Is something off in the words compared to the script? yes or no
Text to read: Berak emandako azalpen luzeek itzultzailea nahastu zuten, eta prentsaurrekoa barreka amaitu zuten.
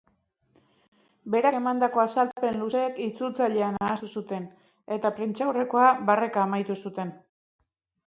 no